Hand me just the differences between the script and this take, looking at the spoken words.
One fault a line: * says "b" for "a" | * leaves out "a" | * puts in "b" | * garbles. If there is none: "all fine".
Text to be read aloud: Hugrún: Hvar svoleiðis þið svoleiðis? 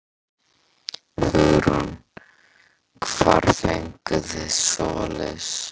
* says "fenguð" for "svoleiðis"